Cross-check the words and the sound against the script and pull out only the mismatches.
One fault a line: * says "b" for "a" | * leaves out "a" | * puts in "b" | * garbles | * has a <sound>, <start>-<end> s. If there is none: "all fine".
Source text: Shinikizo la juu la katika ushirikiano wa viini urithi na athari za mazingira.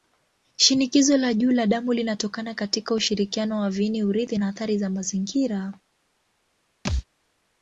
* puts in "damu linatokana"
* has a thud, 6.8-7.0 s